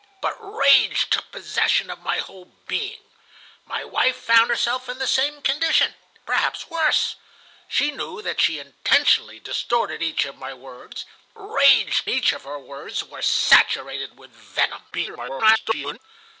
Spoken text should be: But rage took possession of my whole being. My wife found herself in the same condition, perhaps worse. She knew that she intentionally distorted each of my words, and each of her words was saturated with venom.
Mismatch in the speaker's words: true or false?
true